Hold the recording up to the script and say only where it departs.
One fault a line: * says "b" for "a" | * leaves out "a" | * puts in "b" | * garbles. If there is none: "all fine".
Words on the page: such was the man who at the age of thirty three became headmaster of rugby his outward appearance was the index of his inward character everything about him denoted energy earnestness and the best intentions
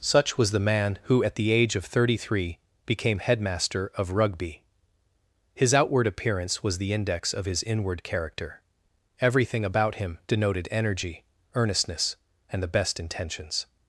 all fine